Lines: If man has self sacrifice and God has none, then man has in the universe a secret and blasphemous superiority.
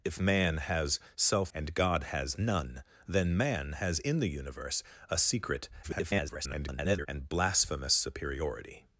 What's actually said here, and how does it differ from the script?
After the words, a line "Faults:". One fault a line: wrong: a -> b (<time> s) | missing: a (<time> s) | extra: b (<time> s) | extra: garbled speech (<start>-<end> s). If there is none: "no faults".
If man has self and God has none, then man has in the universe a secret [garbled] and blasphemous superiority.
Faults:
missing: sacrifice (1.5 s)
extra: garbled speech (5.8-7.1 s)